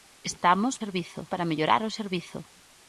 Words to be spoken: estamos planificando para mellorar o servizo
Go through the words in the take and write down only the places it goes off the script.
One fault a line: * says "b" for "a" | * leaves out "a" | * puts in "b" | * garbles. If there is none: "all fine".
* says "servizo" for "planificando"